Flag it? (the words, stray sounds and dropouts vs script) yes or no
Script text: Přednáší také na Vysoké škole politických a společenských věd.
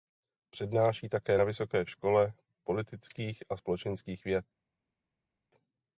no